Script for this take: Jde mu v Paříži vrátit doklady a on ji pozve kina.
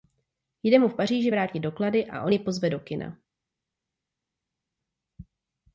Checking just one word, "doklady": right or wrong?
right